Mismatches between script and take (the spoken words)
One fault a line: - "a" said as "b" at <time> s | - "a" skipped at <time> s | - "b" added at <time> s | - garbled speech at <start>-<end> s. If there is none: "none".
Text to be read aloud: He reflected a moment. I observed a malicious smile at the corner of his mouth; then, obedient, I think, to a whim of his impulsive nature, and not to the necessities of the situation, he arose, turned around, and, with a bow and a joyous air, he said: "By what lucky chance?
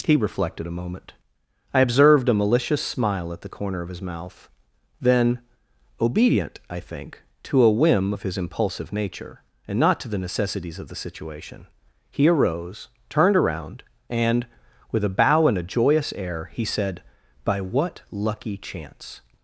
none